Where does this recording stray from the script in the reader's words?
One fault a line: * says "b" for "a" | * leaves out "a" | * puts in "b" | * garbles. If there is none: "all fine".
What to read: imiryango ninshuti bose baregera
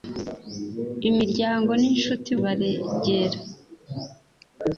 * leaves out "bose"